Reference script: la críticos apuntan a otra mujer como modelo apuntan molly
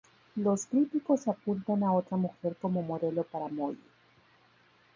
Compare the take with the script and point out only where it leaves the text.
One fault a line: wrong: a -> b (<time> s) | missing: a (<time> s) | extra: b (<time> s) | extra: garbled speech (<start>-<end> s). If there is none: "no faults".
wrong: la -> los (0.3 s)
wrong: apuntan -> para (3.2 s)